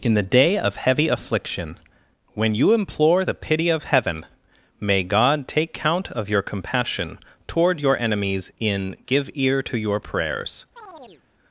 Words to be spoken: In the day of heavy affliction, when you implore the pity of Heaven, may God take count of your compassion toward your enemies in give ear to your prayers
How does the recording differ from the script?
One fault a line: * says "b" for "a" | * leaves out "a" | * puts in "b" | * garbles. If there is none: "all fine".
all fine